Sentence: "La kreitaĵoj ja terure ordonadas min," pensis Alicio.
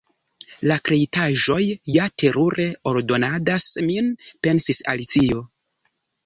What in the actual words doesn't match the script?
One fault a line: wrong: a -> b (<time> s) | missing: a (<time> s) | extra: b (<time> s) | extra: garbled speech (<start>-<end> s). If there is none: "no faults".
no faults